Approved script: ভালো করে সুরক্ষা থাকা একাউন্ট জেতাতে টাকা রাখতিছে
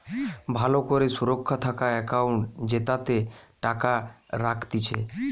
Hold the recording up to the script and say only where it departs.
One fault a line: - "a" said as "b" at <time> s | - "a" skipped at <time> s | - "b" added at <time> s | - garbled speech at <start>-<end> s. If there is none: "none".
none